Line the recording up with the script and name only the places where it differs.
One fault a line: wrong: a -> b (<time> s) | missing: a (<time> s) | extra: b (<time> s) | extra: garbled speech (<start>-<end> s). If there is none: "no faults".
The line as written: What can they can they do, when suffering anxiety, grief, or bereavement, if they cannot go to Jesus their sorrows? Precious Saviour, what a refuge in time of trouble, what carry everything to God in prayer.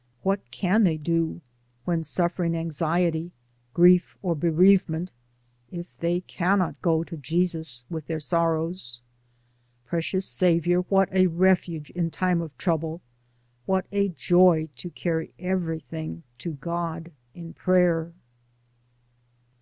missing: can they (1.0 s)
extra: with (7.9 s)
extra: a joy to (13.9 s)